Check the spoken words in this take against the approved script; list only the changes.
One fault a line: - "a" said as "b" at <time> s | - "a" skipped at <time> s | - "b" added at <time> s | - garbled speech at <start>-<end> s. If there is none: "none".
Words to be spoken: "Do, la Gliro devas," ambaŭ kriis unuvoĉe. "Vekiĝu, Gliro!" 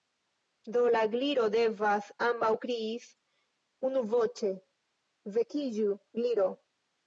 none